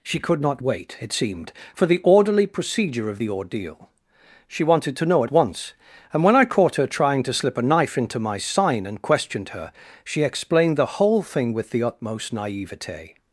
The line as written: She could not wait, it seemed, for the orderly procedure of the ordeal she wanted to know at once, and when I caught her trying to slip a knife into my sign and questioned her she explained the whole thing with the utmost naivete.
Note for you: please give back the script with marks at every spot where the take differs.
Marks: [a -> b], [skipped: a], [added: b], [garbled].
She could not wait, it seemed, for the orderly procedure of the ordeal she wanted to know at once, and when I caught her trying to slip a knife into my sign and questioned her she explained the whole thing with the utmost naivete.